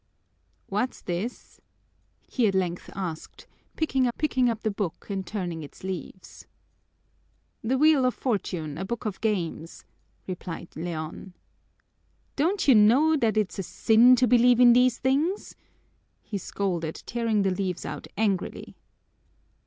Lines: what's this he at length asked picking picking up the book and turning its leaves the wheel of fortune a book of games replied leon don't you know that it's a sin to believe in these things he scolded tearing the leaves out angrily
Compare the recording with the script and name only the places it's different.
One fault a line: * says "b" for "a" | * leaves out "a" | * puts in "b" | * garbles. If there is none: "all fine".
all fine